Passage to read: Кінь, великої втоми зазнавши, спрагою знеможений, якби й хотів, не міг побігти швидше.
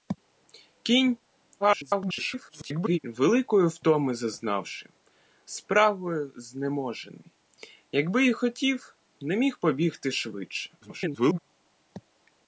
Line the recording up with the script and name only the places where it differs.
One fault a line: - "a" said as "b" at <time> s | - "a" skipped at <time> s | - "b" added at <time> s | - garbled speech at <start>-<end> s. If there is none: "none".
- garbled speech at 1.6-3.0 s
- garbled speech at 10.8-11.4 s